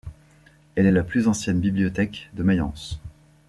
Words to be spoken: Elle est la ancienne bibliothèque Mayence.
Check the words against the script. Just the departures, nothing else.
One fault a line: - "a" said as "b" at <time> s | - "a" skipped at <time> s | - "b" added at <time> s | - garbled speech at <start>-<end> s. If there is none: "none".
- "plus" added at 1.0 s
- "de" added at 2.3 s